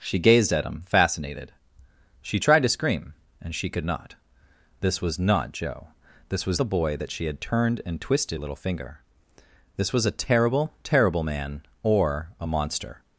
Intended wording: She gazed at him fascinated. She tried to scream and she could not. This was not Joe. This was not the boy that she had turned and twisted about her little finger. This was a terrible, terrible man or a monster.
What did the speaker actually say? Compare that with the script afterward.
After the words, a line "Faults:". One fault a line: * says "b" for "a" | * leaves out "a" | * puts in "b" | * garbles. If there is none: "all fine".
She gazed at him fascinated. She tried to scream and she could not. This was not Joe. This was the boy that she had turned and twisted little finger. This was a terrible, terrible man or a monster.
Faults:
* leaves out "not"
* leaves out "about her"